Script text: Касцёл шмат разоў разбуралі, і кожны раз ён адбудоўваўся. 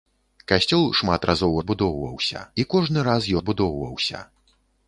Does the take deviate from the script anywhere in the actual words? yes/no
yes